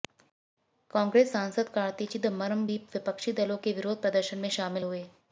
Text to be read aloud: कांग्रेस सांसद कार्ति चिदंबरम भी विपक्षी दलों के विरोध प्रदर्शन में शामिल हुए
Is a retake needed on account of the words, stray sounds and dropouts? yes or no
no